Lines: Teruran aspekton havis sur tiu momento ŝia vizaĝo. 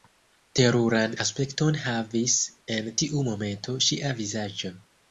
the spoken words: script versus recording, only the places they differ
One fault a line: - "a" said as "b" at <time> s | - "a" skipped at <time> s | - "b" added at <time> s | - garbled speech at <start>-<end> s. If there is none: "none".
- "sur" said as "en" at 2.8 s